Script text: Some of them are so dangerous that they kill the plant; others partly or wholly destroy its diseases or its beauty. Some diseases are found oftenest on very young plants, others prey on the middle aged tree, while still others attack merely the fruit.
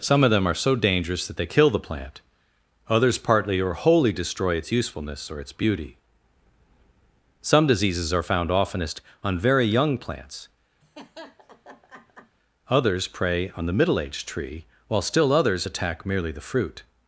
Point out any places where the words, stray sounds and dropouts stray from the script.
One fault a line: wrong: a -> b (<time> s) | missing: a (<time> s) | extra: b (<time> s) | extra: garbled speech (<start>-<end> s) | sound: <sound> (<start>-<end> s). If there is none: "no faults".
wrong: diseases -> usefulness (4.7 s)
sound: laugh (10.8-12.4 s)